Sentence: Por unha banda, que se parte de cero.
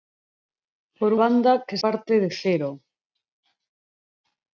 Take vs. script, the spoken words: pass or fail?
fail